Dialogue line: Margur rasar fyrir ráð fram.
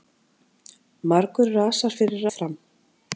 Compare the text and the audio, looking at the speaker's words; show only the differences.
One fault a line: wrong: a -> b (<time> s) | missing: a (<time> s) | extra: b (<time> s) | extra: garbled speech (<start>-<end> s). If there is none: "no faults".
missing: ráð (2.3 s)